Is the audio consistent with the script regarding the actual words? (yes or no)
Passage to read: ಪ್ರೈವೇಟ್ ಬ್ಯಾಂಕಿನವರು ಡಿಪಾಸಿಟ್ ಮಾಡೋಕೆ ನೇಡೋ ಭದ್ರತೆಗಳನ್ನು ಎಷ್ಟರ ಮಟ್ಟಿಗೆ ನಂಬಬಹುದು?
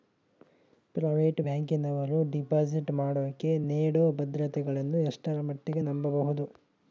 yes